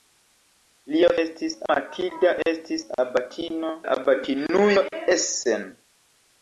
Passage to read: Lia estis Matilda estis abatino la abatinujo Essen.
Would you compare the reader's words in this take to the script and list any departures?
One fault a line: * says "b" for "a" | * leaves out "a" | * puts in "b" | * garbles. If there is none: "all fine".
all fine